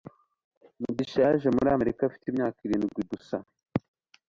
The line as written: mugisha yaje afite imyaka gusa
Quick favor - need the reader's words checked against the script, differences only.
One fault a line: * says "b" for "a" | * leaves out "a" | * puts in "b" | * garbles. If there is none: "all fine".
* puts in "muri amerika"
* puts in "irindwi"